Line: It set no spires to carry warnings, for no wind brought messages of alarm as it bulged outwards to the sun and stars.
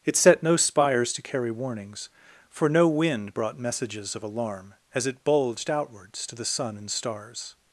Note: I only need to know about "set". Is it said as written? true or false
true